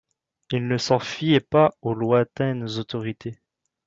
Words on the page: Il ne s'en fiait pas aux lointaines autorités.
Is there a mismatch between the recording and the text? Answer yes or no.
no